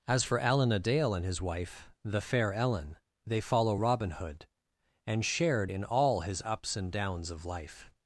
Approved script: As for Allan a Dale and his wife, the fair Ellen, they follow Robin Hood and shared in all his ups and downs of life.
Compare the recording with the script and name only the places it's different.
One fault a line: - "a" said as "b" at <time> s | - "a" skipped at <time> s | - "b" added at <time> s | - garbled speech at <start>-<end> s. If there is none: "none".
none